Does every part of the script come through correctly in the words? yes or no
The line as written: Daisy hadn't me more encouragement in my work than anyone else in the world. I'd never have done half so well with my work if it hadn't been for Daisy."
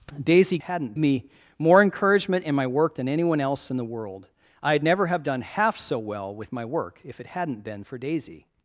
yes